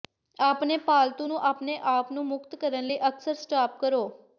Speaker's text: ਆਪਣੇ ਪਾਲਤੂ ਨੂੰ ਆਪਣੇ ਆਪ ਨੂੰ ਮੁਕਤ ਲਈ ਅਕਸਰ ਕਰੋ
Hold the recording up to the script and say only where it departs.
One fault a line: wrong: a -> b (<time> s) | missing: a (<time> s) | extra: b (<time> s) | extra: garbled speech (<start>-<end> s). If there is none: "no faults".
extra: ਕਰਨ (2.6 s)
extra: ਸਟਾਪ (3.4 s)